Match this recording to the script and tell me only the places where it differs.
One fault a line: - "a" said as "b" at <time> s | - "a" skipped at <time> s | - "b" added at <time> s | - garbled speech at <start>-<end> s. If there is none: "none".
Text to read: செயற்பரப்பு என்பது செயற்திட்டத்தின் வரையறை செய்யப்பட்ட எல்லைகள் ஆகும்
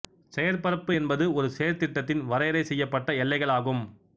- "ஒரு" added at 1.3 s